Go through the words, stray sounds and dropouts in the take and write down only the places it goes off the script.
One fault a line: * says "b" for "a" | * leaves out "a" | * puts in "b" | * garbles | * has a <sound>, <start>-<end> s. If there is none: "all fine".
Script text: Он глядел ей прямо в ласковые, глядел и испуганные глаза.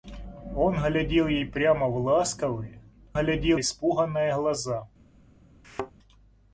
* has a thud, 5.6-5.9 s